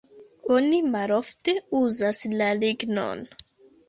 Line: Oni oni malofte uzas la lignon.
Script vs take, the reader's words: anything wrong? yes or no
yes